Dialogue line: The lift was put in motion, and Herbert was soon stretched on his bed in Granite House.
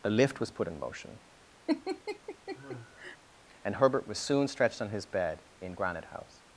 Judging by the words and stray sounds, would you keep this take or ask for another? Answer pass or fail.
fail